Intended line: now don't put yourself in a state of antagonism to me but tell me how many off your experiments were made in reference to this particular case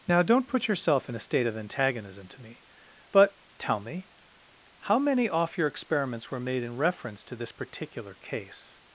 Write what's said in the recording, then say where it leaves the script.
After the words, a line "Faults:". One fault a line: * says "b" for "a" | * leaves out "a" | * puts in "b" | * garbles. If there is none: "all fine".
now don't put yourself in a state of antagonism to me but tell me how many off your experiments were made in reference to this particular case
Faults:
all fine